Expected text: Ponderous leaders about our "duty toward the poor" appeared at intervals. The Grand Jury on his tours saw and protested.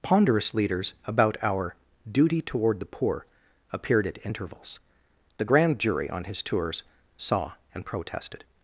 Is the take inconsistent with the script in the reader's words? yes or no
no